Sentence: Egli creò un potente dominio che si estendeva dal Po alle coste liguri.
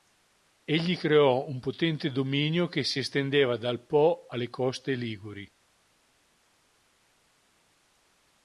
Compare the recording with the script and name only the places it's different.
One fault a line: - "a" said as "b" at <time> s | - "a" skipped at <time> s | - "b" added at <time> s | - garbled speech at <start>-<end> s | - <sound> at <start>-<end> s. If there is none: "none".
none